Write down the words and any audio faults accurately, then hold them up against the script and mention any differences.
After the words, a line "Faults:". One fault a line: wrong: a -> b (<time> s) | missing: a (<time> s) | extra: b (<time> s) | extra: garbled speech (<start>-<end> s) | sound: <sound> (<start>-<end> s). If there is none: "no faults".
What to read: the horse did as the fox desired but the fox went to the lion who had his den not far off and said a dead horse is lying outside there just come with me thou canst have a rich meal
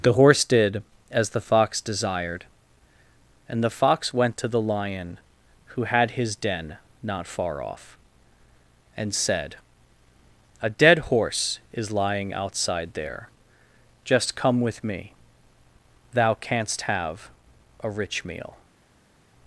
the horse did as the fox desired and the fox went to the lion who had his den not far off and said a dead horse is lying outside there just come with me thou canst have a rich meal
Faults:
wrong: but -> and (3.5 s)